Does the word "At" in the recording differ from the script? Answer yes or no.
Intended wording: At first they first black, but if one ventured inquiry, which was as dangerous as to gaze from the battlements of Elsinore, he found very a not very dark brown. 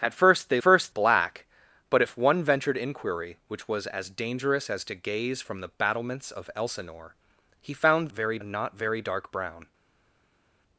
no